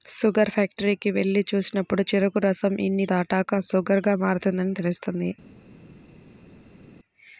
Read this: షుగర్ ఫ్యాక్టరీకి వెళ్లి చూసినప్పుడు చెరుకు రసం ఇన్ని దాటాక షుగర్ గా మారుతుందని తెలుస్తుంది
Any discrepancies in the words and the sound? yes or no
no